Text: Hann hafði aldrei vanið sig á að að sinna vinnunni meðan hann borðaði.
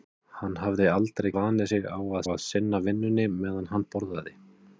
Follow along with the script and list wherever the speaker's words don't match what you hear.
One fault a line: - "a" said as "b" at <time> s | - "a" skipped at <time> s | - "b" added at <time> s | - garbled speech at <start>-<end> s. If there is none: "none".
none